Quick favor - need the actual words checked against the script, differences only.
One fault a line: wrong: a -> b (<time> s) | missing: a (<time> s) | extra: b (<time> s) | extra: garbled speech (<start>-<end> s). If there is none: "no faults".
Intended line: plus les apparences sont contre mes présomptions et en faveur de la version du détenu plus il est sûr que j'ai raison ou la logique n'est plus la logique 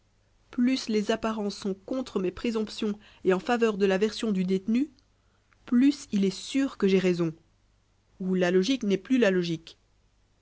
no faults